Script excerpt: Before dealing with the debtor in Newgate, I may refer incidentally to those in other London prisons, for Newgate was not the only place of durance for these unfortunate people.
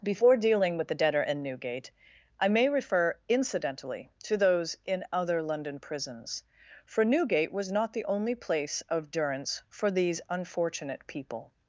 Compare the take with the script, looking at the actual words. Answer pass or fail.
pass